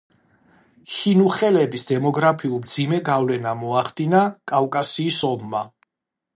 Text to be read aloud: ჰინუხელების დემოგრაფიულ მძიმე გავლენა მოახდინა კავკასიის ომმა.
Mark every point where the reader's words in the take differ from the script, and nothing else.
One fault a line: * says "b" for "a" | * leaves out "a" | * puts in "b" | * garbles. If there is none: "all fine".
all fine